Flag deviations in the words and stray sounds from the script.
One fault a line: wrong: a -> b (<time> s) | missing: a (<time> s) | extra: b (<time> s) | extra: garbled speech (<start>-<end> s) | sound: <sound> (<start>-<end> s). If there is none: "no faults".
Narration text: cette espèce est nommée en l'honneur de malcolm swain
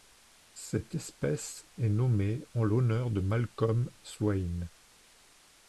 no faults